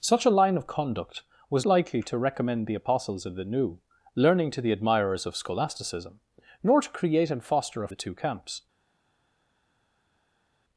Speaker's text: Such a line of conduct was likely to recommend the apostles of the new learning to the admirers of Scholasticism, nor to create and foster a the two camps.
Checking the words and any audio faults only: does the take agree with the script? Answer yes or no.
yes